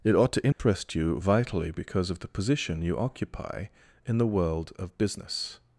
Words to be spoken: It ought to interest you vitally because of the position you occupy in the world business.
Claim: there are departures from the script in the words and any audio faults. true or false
true